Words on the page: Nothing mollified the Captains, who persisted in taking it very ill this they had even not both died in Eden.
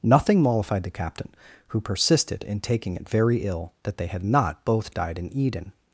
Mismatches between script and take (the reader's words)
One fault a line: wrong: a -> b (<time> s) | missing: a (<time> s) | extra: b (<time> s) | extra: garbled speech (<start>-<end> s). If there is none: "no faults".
wrong: Captains -> Captain (0.9 s)
wrong: this -> that (3.8 s)
missing: even (4.2 s)